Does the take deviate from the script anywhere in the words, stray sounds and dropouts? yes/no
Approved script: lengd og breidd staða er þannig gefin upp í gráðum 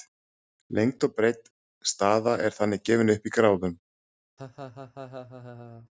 yes